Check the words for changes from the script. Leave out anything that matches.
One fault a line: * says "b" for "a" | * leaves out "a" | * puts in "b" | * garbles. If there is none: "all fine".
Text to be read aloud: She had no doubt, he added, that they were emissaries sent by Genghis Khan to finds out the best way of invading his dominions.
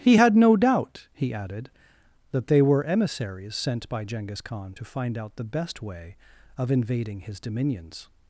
* says "He" for "She"
* says "find" for "finds"